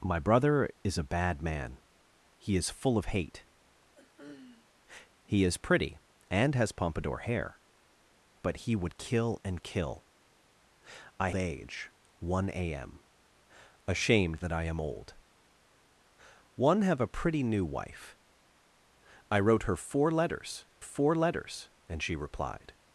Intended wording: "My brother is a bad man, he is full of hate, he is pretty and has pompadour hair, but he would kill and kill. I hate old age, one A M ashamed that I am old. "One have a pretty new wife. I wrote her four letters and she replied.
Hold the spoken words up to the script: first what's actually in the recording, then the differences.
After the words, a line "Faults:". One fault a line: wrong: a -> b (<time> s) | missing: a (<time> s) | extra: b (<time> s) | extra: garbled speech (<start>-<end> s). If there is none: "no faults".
"My brother is a bad man, he is full of hate, he is pretty and has pompadour hair, but he would kill and kill. I age, one A M ashamed that I am old. "One have a pretty new wife. I wrote her four letters four letters and she replied.
Faults:
missing: hate old (11.3 s)
extra: four letters (20.8 s)